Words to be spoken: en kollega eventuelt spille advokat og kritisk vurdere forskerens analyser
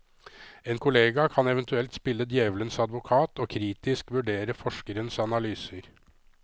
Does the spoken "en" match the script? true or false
true